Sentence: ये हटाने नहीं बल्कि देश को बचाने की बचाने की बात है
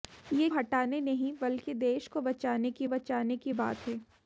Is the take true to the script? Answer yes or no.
yes